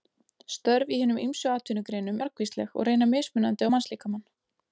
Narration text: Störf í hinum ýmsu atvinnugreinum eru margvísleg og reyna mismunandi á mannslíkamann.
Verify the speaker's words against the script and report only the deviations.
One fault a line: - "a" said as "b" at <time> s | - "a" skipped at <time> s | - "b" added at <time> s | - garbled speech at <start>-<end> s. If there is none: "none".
- "eru" skipped at 2.2 s